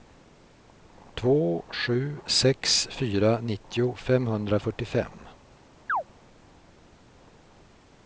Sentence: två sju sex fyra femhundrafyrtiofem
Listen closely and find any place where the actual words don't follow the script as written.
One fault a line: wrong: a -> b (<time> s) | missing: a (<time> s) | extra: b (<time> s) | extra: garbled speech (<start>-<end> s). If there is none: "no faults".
extra: nittio (3.4 s)